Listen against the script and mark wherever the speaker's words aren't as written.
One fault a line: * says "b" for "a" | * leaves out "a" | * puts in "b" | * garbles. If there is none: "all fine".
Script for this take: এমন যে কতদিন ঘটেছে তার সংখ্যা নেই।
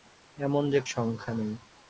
* leaves out "কতদিন ঘটেছে তার"